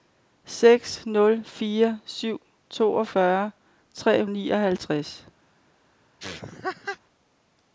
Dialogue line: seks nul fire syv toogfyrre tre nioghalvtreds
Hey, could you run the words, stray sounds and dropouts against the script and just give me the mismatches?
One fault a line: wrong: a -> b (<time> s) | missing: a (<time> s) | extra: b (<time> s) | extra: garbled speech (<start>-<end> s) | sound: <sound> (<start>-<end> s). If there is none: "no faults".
sound: laugh (6.2-7.0 s)